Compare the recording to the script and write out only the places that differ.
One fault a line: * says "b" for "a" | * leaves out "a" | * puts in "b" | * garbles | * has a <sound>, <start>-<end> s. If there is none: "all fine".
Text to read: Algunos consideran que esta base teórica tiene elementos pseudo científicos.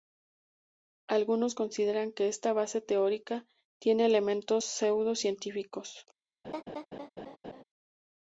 * has a laugh, 6.4-7.6 s